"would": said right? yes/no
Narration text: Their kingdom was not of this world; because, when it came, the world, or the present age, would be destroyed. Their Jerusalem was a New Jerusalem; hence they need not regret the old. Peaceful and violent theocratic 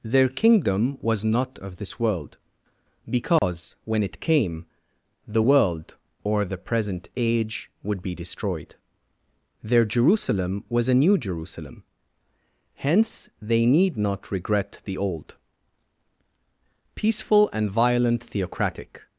yes